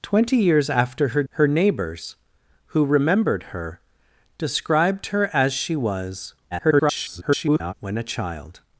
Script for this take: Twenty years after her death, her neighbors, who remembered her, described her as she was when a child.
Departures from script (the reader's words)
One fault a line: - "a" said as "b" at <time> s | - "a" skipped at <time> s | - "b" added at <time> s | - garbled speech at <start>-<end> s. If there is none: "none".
- "death" skipped at 1.2 s
- garbled speech at 6.5-7.7 s